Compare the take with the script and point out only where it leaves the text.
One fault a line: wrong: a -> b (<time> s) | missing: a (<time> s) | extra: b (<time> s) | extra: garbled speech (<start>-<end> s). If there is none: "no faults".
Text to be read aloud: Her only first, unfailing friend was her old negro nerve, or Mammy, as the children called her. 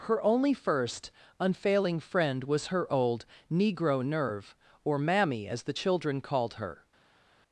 no faults